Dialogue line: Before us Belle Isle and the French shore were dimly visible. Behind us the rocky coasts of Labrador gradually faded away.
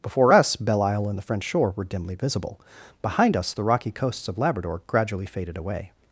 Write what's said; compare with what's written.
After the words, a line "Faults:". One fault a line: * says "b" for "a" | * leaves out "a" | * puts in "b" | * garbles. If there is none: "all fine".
Before us Belle Isle and the French shore were dimly visible. Behind us the rocky coasts of Labrador gradually faded away.
Faults:
all fine